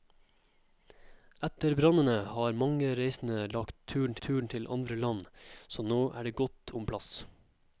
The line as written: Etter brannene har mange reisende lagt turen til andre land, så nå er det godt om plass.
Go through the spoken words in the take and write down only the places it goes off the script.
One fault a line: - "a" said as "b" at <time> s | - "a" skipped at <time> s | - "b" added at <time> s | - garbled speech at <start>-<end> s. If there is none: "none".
- "turen" added at 4.3 s